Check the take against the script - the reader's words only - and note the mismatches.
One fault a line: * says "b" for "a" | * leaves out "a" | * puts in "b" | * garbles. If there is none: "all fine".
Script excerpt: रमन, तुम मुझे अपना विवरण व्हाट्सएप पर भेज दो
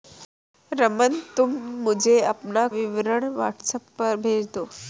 all fine